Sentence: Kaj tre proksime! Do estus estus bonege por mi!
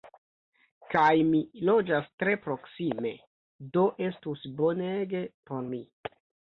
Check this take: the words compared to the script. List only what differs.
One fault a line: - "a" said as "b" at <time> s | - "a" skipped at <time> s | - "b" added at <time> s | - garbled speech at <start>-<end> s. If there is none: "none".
- "mi loĝas" added at 1.3 s
- "estus" skipped at 4.5 s